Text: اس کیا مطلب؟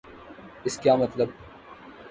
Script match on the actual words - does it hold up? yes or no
yes